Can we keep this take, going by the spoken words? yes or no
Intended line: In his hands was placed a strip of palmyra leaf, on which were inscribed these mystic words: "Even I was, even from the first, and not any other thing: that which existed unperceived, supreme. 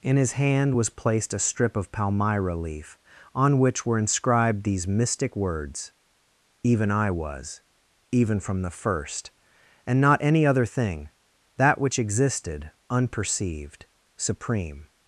no